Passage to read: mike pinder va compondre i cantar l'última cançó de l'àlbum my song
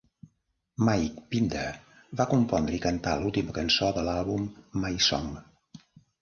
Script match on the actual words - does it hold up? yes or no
yes